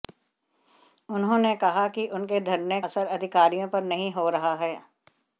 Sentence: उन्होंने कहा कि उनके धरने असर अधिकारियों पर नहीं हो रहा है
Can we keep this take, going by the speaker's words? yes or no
yes